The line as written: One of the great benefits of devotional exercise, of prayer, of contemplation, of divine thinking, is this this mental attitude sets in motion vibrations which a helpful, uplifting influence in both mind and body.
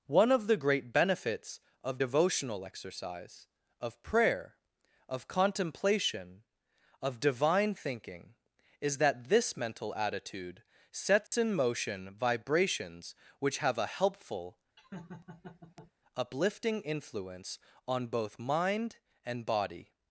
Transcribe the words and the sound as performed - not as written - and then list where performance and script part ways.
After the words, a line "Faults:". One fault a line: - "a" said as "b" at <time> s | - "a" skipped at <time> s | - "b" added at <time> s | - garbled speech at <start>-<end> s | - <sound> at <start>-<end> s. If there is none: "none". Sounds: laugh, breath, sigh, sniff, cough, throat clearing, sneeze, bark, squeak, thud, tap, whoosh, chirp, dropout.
One of the great benefits of devotional exercise, of prayer, of contemplation, of divine thinking, is that this mental attitude sets in motion vibrations which have a helpful, uplifting influence on both mind and body.
Faults:
- "this" said as "that" at 9.0 s
- dropout at 11.3-11.3 s
- "have" added at 13.6 s
- laugh at 14.8-15.9 s
- "in" said as "on" at 17.9 s